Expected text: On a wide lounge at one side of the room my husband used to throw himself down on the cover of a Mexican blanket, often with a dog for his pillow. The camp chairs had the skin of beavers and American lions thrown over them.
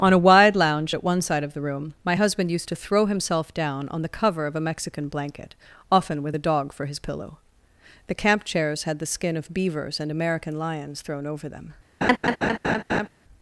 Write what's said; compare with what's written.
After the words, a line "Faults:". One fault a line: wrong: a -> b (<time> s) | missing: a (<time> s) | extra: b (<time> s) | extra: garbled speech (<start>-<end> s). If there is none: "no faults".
On a wide lounge at one side of the room my husband used to throw himself down on the cover of a Mexican blanket, often with a dog for his pillow. The camp chairs had the skin of beavers and American lions thrown over them.
Faults:
no faults